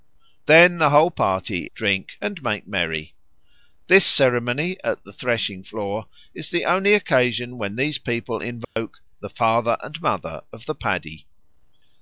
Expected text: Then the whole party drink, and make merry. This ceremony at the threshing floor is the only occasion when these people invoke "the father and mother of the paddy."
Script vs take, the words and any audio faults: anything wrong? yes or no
yes